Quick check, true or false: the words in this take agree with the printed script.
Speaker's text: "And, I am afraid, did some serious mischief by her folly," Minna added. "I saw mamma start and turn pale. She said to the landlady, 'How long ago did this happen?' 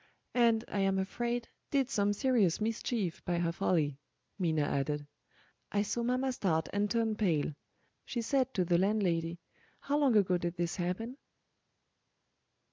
true